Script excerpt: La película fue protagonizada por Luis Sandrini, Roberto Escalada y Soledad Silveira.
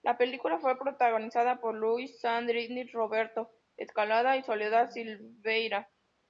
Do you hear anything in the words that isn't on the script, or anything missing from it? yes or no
no